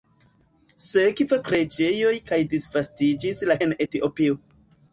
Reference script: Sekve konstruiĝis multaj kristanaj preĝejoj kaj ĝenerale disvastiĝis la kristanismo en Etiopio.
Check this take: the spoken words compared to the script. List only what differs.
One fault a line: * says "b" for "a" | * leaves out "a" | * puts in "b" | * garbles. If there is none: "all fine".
* leaves out "konstruiĝis multaj kristanaj"
* leaves out "ĝenerale"
* leaves out "kristanismo"